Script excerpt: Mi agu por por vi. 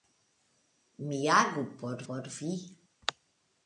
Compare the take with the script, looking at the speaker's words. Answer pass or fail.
pass